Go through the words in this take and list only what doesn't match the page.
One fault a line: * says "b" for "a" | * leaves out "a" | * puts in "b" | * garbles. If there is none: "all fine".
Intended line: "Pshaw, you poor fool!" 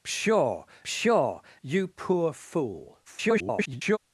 * puts in "pshaw"
* garbles